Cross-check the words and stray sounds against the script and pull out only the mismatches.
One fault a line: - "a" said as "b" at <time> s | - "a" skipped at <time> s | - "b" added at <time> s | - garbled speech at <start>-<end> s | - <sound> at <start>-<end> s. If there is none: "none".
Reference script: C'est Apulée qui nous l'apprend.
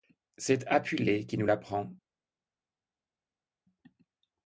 none